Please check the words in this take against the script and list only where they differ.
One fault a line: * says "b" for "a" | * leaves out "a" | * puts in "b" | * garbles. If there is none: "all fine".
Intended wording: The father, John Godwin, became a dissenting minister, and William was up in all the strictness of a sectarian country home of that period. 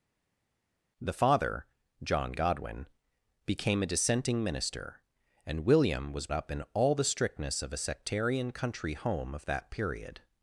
all fine